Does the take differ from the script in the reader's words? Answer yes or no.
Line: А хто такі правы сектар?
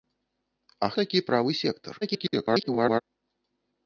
yes